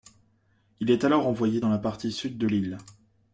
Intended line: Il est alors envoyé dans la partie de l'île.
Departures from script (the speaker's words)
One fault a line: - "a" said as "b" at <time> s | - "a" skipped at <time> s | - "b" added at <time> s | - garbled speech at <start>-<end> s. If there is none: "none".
- "sud" added at 2.1 s